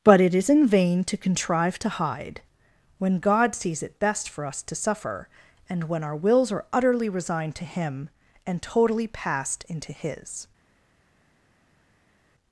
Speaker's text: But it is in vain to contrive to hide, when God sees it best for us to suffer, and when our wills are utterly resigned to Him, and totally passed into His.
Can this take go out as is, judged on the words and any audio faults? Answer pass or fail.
pass